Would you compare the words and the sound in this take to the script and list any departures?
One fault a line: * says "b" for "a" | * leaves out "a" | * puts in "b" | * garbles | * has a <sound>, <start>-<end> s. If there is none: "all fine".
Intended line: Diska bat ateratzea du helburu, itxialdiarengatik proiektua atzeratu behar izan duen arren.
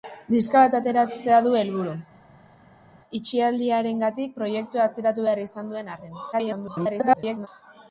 * garbles